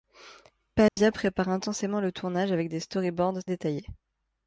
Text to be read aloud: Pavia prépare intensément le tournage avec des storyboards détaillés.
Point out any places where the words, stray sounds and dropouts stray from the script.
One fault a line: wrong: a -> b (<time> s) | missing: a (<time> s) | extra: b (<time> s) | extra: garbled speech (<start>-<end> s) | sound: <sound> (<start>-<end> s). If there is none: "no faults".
sound: dropout (0.9-1.0 s)